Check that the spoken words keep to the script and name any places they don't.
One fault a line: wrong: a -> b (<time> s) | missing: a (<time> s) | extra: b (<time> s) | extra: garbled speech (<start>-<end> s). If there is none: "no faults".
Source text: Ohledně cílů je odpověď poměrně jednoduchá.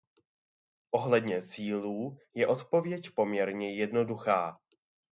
no faults